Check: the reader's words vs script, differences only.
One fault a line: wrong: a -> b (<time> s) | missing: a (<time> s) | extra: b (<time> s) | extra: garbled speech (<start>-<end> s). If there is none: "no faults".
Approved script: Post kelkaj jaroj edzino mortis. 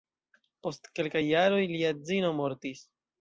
extra: lia (1.7 s)